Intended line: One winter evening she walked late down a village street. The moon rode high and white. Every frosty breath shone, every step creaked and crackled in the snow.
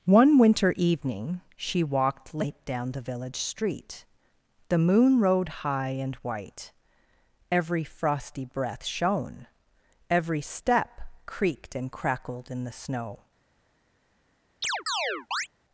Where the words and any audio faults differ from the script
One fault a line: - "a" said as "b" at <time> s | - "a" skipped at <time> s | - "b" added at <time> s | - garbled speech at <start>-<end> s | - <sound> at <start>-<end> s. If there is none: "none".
- "a" said as "the" at 2.9 s
- chirp at 14.6-15.5 s